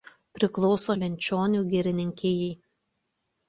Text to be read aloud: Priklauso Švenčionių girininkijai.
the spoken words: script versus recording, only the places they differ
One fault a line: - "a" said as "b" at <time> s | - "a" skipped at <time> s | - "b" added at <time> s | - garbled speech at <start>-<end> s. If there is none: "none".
none